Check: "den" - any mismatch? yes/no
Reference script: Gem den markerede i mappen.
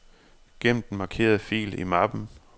no